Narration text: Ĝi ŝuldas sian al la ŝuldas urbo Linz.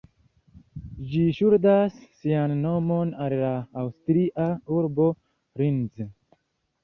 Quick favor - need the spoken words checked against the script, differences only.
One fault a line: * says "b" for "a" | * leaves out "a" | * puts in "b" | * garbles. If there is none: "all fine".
* puts in "nomon"
* says "aŭstria" for "ŝuldas"